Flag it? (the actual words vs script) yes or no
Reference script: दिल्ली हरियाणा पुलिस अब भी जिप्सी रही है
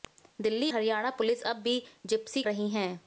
no